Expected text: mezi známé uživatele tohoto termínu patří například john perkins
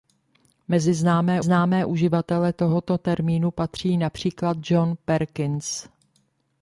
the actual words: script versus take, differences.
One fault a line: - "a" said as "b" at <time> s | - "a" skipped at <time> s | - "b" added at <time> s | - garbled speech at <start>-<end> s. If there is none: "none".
- "známé" added at 1.4 s